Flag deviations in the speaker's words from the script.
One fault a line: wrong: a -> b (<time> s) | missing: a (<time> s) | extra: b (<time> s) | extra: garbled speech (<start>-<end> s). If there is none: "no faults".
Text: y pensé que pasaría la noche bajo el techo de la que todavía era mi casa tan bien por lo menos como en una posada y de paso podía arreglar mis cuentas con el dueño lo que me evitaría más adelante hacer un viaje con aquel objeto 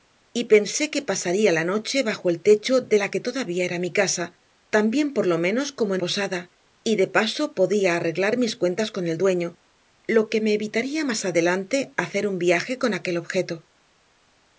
missing: una (6.0 s)